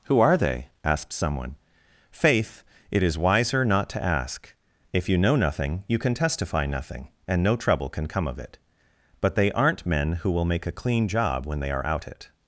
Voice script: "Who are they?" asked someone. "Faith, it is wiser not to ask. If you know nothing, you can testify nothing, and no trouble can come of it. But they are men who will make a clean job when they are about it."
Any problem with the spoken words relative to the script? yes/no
yes